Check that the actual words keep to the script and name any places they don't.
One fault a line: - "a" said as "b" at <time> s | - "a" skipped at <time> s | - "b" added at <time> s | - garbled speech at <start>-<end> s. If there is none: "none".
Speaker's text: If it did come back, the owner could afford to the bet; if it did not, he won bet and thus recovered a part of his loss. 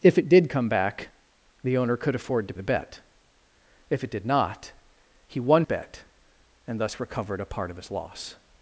none